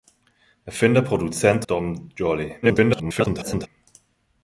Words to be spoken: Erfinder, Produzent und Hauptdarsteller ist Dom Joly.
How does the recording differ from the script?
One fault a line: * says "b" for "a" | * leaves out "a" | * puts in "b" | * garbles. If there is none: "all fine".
* leaves out "und Hauptdarsteller ist"
* garbles